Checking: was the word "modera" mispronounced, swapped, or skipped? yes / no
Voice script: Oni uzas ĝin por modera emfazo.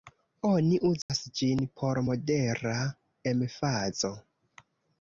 no